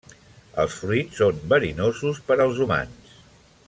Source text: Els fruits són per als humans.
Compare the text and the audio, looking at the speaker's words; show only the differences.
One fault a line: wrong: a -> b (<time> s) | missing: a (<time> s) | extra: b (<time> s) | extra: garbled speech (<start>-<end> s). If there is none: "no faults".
extra: verinosos (1.5 s)